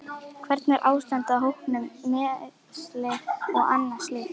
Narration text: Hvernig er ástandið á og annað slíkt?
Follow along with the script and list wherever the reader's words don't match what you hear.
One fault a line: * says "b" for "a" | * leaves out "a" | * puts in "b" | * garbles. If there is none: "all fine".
* puts in "hópnum meiðsli"